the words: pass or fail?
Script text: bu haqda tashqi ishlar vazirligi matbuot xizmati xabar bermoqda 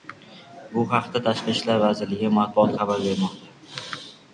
fail